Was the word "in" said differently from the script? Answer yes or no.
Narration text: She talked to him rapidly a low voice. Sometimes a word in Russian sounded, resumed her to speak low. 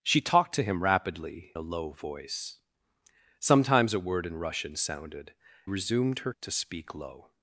no